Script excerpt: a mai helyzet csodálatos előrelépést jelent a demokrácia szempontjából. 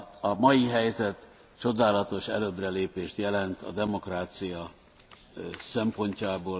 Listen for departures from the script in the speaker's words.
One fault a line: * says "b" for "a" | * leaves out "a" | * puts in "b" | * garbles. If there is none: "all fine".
all fine